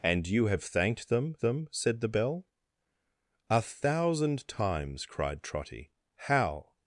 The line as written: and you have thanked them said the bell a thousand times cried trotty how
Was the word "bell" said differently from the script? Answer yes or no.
no